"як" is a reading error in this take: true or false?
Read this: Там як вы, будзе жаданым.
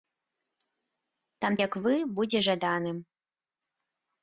false